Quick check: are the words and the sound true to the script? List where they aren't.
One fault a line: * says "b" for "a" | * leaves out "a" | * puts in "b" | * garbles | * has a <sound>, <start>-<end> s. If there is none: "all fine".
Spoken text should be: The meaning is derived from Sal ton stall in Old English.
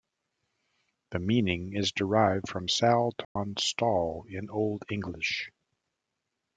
* has a dropout, 3.2-3.4 s